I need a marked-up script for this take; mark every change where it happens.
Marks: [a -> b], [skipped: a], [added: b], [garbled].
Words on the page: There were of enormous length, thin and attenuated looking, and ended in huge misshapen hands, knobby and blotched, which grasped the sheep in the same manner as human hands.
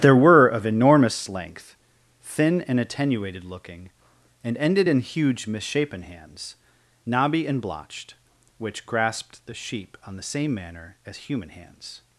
There were of enormous length, thin and attenuated looking, and ended in huge misshapen hands, knobby and blotched, which grasped the sheep [in -> on] the same manner as human hands.